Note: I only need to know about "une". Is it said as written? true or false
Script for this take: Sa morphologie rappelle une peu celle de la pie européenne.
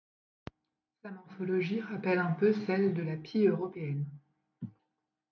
false